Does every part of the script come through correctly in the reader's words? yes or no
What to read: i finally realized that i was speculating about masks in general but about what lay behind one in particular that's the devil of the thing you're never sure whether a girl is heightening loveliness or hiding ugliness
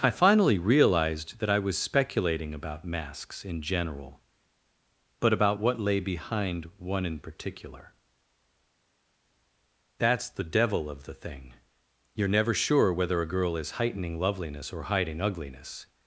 yes